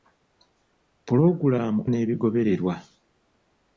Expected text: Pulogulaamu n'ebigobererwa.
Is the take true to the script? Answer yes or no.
yes